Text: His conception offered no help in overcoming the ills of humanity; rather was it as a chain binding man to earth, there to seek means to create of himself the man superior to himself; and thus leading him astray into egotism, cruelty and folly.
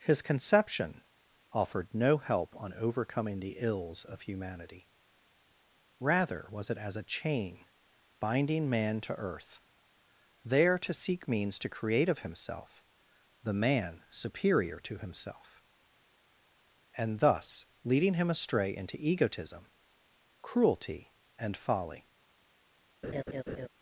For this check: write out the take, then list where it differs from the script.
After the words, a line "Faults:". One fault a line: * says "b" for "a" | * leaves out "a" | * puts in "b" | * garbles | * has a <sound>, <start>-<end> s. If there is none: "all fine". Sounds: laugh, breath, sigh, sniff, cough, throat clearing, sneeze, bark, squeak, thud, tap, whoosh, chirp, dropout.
His conception offered no help on overcoming the ills of humanity; rather was it as a chain binding man to earth, there to seek means to create of himself the man superior to himself; and thus leading him astray into egotism, cruelty and folly.
Faults:
* says "on" for "in"
* has a laugh, 23.0-23.7 s